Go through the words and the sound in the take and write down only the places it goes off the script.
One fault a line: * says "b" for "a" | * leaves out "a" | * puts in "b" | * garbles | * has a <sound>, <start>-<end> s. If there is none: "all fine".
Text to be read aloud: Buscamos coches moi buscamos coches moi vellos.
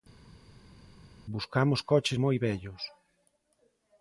* leaves out "buscamos coches moi"